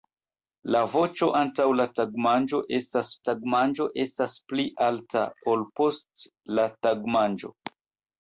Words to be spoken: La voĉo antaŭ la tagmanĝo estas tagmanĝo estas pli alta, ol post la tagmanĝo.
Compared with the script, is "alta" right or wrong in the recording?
right